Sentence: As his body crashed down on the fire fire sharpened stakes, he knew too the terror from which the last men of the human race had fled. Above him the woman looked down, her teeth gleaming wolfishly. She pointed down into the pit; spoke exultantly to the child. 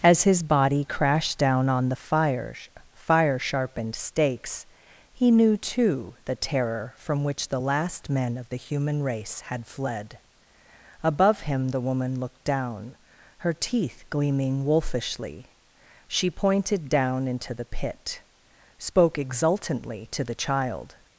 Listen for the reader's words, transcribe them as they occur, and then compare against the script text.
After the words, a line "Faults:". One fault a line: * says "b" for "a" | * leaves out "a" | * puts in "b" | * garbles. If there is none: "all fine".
As his body crashed down on the fire fire sharpened stakes, he knew too the terror from which the last men of the human race had fled. Above him the woman looked down, her teeth gleaming wolfishly. She pointed down into the pit; spoke exultantly to the child.
Faults:
all fine